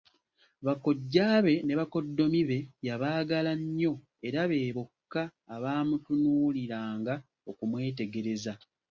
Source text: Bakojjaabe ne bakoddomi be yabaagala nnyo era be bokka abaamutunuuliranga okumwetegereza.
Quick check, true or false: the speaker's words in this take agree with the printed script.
true